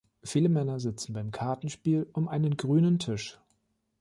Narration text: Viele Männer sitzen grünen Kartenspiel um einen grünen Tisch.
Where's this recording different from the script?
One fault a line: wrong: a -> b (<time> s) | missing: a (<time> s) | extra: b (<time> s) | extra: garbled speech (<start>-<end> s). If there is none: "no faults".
wrong: grünen -> beim (1.1 s)